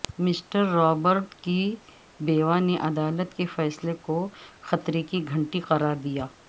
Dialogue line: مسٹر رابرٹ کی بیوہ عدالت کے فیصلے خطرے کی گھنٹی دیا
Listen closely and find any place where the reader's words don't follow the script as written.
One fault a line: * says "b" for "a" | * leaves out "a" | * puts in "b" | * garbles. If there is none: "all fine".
* puts in "نے"
* puts in "کو"
* puts in "قرار"